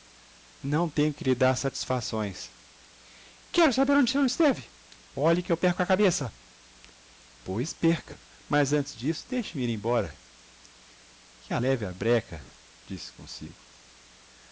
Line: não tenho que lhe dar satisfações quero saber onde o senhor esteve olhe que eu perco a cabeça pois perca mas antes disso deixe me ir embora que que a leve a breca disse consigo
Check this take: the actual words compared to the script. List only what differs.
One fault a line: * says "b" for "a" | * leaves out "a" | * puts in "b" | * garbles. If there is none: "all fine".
* leaves out "que"